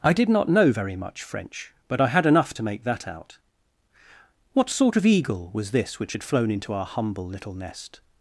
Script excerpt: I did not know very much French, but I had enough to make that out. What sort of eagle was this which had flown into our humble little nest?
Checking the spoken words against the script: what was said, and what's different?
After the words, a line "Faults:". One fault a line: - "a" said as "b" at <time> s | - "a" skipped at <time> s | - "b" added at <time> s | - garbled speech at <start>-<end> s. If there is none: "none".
I did not know very much French, but I had enough to make that out. What sort of eagle was this which had flown into our humble little nest?
Faults:
none